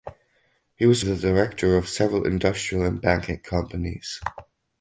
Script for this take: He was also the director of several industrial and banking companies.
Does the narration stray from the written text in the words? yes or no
yes